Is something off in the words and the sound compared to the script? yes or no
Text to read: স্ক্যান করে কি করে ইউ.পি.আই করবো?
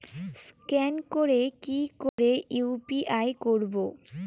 yes